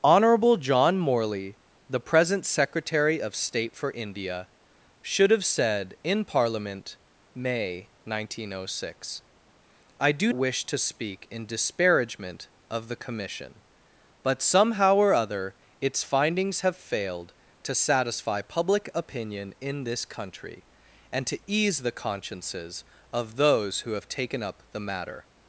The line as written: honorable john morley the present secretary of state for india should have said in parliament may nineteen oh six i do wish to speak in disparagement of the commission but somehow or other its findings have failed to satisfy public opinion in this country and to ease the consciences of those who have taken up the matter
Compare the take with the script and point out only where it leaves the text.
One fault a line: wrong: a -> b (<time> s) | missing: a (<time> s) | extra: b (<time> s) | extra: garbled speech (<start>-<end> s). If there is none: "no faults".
no faults